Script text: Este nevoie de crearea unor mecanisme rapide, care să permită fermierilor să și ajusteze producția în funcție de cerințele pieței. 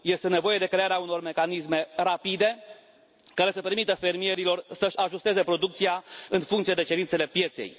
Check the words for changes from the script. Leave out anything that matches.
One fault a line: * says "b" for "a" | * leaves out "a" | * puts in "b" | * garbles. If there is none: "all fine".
all fine